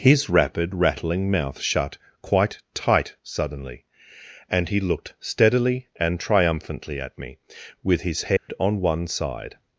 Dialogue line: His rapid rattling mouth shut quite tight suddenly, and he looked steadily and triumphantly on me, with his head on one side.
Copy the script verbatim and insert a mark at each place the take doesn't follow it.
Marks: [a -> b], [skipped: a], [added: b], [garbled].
His rapid rattling mouth shut quite tight suddenly, and he looked steadily and triumphantly [on -> at] me, with his head on one side.